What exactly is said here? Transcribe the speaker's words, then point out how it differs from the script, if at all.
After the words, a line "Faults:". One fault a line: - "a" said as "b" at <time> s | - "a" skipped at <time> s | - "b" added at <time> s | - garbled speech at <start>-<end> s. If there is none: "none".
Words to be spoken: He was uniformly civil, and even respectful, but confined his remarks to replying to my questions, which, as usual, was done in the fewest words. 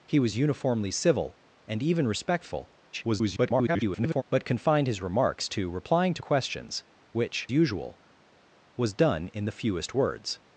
He was uniformly civil, and even respectful, [garbled] but confined his remarks to replying to questions, which, usual, was done in the fewest words.
Faults:
- garbled speech at 2.9-4.2 s
- "my" skipped at 6.2 s
- "as" skipped at 7.5 s